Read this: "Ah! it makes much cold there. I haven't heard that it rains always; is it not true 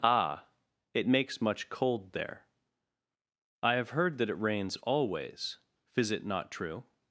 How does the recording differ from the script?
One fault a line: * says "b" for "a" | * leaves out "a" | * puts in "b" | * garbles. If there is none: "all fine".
* says "have" for "haven't"